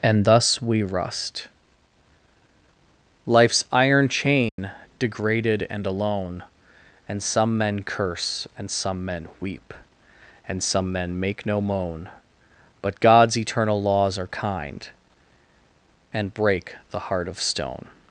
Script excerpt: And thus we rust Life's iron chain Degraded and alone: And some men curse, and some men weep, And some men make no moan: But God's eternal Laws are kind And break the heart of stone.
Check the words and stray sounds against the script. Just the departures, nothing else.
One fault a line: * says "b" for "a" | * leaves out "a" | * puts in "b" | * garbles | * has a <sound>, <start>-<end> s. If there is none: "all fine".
* has a dropout, 4.5-4.6 s